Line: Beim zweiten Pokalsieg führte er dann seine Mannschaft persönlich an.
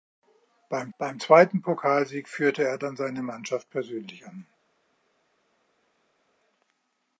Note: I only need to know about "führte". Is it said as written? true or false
true